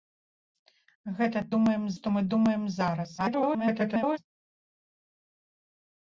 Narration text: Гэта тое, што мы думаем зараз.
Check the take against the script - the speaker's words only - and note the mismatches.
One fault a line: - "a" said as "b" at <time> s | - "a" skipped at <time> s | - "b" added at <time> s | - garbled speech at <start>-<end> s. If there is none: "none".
- "тое" said as "думаем" at 1.6 s
- garbled speech at 3.2-4.2 s